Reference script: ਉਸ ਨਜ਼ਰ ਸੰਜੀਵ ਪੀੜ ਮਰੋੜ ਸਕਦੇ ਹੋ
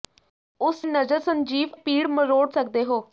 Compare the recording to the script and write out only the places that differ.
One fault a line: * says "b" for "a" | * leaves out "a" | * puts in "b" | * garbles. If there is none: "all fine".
all fine